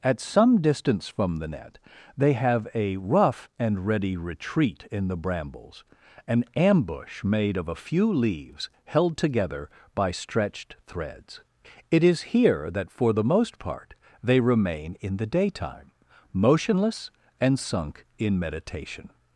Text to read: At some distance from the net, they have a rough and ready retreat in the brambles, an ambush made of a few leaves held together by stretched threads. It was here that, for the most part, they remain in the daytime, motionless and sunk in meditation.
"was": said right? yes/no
no